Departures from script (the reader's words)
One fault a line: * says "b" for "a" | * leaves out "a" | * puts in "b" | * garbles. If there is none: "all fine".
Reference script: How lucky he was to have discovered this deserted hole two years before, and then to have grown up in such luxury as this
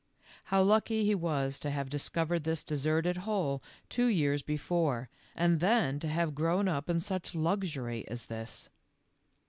all fine